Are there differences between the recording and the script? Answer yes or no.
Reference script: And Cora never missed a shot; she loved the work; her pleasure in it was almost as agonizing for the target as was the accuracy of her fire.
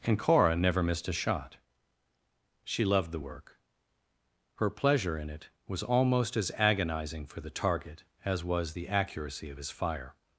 yes